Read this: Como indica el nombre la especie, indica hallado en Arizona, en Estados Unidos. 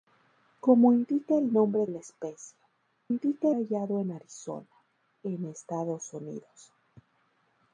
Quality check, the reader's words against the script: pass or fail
pass